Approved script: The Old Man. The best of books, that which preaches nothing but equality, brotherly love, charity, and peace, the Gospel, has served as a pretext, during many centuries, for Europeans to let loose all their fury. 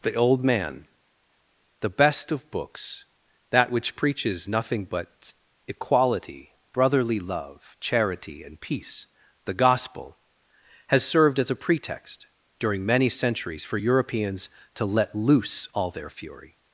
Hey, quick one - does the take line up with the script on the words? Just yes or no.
yes